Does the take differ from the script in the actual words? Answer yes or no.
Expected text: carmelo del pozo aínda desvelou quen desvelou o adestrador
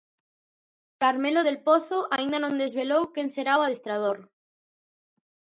yes